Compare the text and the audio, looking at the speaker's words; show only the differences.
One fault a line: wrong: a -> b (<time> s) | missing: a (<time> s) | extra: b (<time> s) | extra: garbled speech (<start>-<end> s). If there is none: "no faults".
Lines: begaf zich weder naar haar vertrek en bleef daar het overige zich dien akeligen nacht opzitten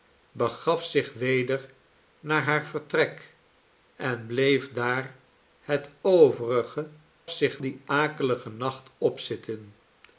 no faults